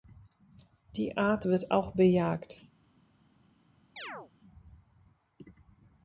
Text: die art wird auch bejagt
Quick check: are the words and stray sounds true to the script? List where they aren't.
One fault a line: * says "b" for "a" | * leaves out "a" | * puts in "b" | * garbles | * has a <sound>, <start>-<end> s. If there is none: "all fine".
* has a chirp, 4.0-4.3 s